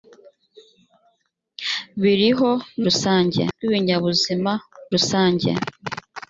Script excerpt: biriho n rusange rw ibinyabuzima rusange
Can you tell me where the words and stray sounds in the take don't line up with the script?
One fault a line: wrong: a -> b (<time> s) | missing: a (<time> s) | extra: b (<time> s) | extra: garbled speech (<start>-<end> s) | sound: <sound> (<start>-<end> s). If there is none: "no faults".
no faults